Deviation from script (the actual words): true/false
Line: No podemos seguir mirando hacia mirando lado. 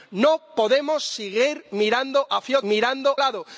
false